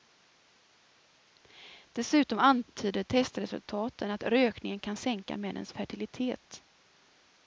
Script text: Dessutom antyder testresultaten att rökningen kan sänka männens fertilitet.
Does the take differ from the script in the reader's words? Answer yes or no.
no